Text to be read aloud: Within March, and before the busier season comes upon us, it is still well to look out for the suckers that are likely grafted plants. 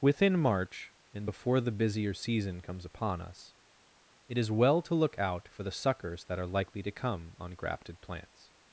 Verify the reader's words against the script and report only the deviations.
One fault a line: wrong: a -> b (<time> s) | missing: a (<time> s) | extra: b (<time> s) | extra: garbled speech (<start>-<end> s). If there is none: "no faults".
missing: still (4.5 s)
extra: to come on (6.8 s)